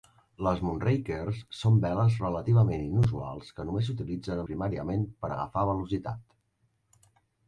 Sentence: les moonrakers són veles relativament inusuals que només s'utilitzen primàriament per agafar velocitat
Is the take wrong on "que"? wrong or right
right